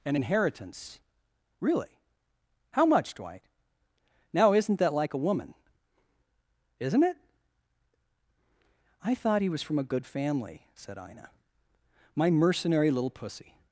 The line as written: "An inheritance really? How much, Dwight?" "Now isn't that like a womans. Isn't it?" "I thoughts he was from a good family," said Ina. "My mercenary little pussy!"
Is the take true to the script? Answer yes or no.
no